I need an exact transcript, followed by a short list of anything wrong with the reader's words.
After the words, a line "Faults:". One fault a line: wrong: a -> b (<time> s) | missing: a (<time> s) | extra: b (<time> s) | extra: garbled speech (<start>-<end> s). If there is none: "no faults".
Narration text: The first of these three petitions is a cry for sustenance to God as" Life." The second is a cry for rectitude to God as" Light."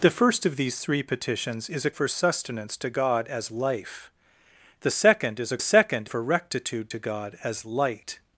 The first of these three petitions is a for sustenance to God as" Life." The second is a second for rectitude to God as" Light."
Faults:
missing: cry (1.9 s)
wrong: cry -> second (5.6 s)